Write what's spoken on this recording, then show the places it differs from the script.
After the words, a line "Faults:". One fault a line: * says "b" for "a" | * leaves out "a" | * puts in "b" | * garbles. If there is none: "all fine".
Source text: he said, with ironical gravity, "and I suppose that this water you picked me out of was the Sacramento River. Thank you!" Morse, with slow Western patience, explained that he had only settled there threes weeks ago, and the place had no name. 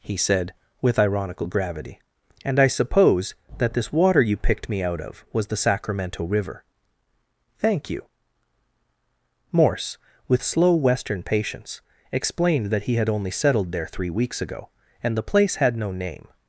he said, with ironical gravity, "and I suppose that this water you picked me out of was the Sacramento River. Thank you!" Morse, with slow Western patience, explained that he had only settled there three weeks ago, and the place had no name.
Faults:
* says "three" for "threes"